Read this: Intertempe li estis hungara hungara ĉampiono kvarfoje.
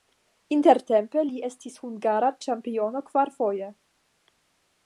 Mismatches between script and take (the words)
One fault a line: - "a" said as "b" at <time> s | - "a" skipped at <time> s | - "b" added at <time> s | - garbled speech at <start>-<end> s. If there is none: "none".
- "hungara" skipped at 2.3 s